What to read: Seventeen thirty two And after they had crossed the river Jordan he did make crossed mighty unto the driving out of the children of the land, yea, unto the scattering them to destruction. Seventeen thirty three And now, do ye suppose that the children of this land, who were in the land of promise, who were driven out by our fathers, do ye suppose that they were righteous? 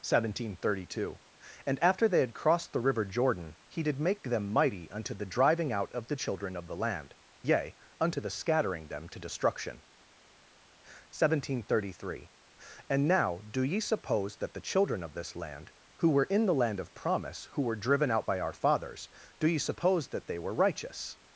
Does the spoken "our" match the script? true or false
true